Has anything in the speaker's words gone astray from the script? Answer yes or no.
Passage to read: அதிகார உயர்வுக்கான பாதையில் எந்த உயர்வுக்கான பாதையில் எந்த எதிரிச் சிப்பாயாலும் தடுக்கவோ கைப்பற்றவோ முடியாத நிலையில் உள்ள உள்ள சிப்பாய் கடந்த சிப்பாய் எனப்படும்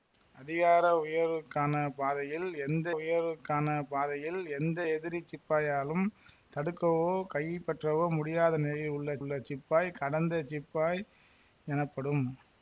no